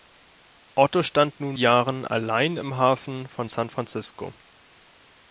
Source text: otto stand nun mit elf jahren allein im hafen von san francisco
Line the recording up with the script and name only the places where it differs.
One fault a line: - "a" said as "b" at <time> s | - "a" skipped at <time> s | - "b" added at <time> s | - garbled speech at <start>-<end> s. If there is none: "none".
- "mit elf" skipped at 1.6 s